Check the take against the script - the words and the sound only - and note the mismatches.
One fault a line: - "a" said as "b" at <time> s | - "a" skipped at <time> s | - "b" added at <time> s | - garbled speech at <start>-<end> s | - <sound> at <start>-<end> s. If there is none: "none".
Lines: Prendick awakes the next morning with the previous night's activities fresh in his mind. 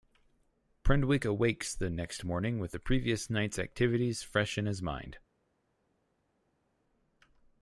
none